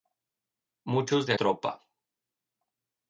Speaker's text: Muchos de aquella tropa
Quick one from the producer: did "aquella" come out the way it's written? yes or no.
no